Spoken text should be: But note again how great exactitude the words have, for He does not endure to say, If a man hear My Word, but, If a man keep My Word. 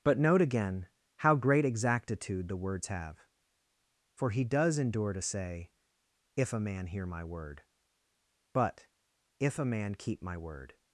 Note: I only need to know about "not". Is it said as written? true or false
false